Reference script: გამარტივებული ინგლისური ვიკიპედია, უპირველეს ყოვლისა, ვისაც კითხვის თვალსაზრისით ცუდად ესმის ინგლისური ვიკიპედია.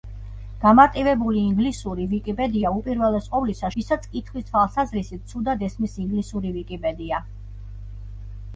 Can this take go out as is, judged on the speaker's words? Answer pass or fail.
pass